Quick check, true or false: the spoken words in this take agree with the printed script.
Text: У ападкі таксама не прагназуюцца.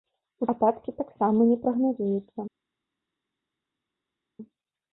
true